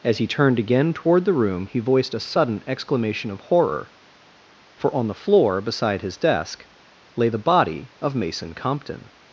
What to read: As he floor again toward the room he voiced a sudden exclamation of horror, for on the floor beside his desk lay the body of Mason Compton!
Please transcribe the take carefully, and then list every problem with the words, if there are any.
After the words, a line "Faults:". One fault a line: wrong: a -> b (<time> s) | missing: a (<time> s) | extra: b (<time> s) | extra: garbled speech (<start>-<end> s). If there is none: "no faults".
As he turned again toward the room he voiced a sudden exclamation of horror, for on the floor beside his desk lay the body of Mason Compton!
Faults:
wrong: floor -> turned (0.2 s)